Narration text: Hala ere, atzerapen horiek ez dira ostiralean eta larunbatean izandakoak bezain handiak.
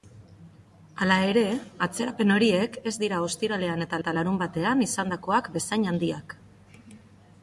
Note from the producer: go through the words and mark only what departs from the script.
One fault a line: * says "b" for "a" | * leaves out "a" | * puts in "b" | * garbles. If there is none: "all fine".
* puts in "eta"